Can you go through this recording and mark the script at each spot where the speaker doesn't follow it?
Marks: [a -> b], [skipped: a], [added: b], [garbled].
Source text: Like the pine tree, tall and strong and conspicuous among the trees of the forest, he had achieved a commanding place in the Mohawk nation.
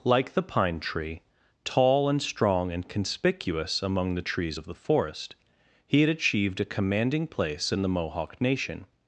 Like the pine tree, tall and strong and conspicuous among the trees of the forest, he had achieved a commanding place in the Mohawk nation.